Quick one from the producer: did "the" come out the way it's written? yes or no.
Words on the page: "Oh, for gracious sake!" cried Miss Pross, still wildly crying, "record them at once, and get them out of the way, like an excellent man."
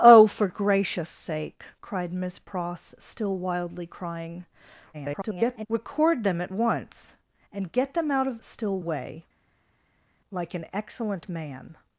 no